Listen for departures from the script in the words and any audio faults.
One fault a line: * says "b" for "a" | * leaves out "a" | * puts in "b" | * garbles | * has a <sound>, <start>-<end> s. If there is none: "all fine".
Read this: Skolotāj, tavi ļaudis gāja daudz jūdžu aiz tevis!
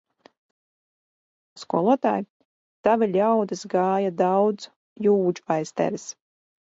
all fine